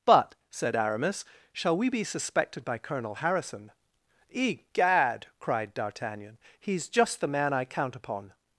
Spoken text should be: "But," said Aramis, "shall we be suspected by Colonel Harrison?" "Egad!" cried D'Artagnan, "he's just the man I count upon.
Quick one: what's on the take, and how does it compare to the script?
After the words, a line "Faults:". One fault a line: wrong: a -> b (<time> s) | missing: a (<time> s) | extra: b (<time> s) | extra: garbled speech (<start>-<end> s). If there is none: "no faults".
"But," said Aramis, "shall we be suspected by Colonel Harrison?" "Egad!" cried D'Artagnan, "he's just the man I count upon.
Faults:
no faults